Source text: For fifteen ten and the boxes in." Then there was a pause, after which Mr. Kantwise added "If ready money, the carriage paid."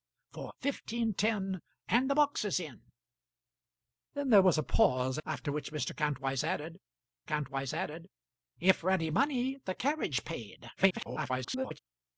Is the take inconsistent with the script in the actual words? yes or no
yes